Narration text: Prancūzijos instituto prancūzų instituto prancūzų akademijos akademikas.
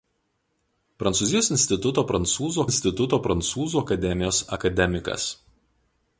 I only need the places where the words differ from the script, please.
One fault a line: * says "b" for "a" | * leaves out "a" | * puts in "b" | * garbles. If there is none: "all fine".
all fine